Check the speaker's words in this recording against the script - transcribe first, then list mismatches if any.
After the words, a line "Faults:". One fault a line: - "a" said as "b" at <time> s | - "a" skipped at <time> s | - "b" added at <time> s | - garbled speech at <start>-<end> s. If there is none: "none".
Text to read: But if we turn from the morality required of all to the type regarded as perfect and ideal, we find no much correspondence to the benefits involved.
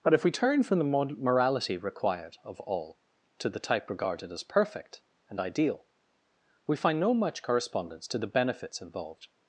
But if we turn from the morality required of all to the type regarded as perfect and ideal, we find no much correspondence to the benefits involved.
Faults:
none